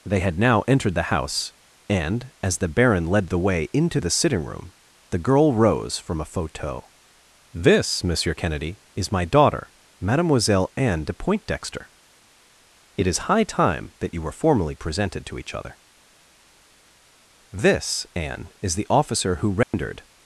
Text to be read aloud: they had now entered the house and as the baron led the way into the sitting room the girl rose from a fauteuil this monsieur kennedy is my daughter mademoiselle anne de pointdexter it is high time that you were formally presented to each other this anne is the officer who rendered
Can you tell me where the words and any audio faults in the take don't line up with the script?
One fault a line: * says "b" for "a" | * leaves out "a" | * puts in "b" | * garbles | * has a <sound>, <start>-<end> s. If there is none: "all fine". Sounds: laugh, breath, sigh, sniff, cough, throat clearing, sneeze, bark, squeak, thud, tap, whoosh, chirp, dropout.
* has a dropout, 19.6-19.7 s